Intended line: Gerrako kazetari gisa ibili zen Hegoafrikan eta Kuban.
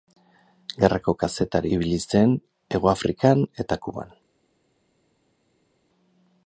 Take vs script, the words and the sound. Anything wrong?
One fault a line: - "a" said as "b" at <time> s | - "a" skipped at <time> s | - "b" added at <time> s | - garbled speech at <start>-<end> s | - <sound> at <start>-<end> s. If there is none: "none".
- "gisa" skipped at 1.7 s